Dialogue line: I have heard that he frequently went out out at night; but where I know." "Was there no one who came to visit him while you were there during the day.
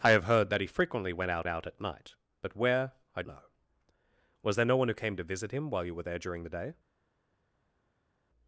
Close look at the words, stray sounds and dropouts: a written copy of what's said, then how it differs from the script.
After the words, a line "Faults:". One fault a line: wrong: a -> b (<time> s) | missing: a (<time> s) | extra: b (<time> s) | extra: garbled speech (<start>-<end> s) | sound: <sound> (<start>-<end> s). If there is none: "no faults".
I have heard that he frequently went out out at night; but where I know." "Was there no one who came to visit him while you were there during the day.
Faults:
no faults